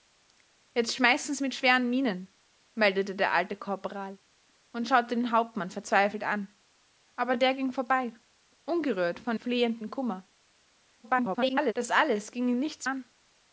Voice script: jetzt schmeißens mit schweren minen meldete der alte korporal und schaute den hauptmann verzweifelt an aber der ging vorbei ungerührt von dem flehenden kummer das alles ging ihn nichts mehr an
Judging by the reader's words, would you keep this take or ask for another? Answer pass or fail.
fail